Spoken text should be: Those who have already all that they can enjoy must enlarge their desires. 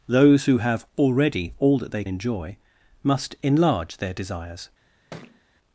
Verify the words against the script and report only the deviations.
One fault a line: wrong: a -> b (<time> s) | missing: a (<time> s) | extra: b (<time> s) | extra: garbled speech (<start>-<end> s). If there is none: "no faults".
missing: can (2.0 s)